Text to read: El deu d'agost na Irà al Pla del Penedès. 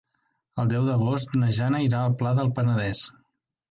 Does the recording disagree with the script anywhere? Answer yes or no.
yes